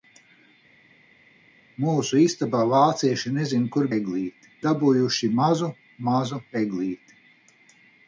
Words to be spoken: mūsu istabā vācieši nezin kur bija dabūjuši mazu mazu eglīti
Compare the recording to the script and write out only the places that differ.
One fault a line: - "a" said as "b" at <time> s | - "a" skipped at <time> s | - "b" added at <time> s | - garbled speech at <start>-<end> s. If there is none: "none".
- "bija" said as "eglīti" at 4.0 s